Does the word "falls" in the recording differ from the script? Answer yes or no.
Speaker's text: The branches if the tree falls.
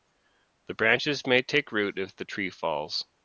no